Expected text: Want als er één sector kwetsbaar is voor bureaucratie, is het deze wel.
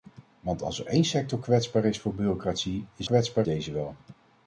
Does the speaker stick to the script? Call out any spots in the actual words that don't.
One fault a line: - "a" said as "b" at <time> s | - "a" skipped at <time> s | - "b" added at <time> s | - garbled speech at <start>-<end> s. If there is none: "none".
- "het" said as "kwetsbaar" at 3.0 s